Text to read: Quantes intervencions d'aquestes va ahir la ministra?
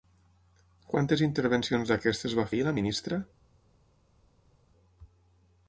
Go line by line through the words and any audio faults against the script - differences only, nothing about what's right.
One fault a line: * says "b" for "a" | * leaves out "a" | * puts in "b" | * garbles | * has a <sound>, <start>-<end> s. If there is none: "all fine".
all fine